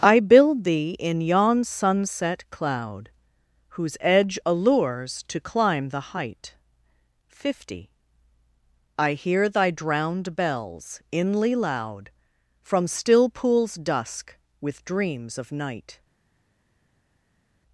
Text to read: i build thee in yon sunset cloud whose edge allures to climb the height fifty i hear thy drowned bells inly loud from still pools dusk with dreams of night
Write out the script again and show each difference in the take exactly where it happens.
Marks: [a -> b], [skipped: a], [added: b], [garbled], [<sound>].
i build thee in yon sunset cloud whose edge allures to climb the height fifty i hear thy drowned bells inly loud from still pools dusk with dreams of night